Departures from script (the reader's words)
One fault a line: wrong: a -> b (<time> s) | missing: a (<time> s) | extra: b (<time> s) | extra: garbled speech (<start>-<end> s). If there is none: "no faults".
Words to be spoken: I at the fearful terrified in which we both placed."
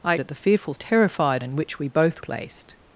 no faults